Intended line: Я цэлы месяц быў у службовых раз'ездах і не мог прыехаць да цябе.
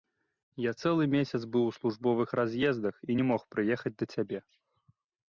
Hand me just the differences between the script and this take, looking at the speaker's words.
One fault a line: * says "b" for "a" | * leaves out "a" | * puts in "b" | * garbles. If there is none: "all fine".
all fine